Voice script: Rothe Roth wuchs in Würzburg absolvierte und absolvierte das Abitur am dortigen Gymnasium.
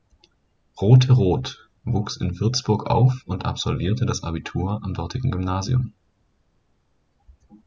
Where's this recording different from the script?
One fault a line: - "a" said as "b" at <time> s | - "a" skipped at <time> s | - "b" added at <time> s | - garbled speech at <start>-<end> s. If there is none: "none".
- "absolvierte" said as "auf" at 2.9 s